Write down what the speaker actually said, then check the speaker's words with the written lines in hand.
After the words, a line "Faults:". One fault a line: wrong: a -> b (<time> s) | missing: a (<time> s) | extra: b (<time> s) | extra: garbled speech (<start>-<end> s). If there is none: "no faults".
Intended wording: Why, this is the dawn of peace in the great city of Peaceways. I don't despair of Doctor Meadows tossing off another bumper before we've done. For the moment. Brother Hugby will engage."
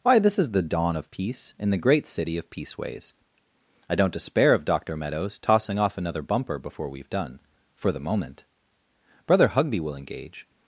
Why, this is the dawn of peace in the great city of Peaceways. I don't despair of Doctor Meadows tossing off another bumper before we've done. For the moment. Brother Hugby will engage."
Faults:
no faults